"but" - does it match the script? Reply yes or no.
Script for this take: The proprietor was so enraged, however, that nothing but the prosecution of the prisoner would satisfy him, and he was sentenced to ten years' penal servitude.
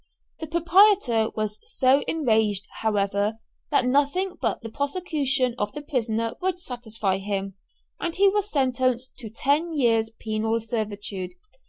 yes